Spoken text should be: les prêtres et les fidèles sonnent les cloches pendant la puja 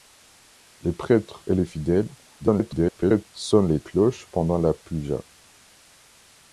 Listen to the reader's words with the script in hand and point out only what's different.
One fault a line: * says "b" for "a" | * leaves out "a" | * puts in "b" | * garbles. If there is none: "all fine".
* garbles